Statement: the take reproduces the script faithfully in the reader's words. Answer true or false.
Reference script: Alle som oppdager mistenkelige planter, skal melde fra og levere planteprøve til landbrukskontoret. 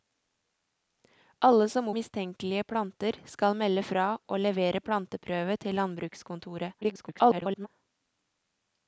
false